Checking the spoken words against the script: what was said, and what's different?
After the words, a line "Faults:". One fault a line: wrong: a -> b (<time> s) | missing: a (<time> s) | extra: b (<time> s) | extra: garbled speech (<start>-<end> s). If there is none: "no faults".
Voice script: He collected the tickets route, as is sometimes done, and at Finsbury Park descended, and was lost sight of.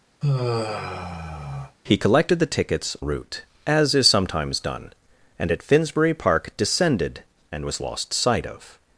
He collected the tickets route, as is sometimes done, and at Finsbury Park descended, and was lost sight of.
Faults:
no faults